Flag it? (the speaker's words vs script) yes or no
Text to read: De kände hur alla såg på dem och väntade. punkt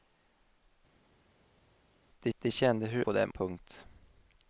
yes